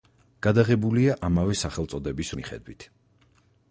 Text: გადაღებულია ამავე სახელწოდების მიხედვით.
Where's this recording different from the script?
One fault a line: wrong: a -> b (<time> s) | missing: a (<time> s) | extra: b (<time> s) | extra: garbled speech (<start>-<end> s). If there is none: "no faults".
no faults